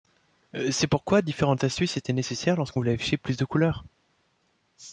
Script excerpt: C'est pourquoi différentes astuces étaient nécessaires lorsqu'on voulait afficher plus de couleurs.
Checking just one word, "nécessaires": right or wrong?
right